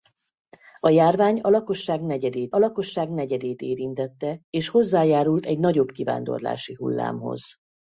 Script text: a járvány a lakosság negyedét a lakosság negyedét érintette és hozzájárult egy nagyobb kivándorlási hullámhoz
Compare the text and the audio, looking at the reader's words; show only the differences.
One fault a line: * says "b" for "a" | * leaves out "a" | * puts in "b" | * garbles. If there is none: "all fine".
all fine